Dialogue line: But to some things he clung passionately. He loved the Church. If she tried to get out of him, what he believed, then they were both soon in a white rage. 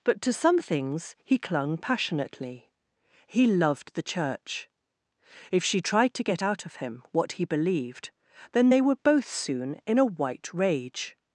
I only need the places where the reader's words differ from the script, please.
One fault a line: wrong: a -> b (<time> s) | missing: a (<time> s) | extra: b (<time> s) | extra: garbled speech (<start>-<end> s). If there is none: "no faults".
no faults